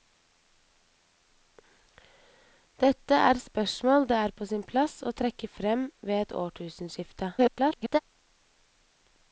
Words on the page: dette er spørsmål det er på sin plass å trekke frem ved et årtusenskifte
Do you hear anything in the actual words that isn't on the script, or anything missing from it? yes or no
yes